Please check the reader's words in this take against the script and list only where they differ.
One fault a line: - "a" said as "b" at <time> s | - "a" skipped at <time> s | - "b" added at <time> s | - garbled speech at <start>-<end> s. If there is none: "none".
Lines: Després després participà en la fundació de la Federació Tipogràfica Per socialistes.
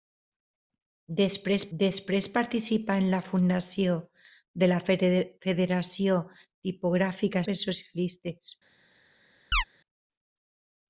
none